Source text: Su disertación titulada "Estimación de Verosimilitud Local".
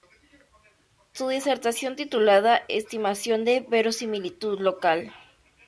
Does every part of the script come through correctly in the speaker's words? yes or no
yes